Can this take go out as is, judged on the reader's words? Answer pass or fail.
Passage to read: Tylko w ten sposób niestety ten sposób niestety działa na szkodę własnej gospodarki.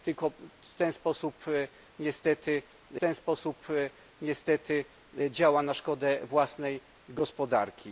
pass